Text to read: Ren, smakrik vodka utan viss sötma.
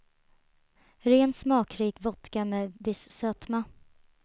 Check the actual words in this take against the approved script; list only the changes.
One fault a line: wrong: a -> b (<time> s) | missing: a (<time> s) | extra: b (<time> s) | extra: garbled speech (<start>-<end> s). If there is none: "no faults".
wrong: utan -> med (2.5 s)